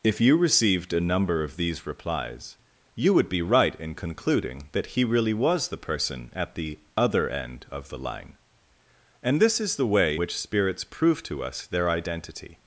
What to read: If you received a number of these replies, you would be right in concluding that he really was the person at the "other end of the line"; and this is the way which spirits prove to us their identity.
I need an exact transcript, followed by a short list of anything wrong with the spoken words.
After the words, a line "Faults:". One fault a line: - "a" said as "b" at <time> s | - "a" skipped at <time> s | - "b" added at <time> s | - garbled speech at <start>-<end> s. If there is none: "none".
If you received a number of these replies, you would be right in concluding that he really was the person at the "other end of the line"; and this is the way which spirits prove to us their identity.
Faults:
none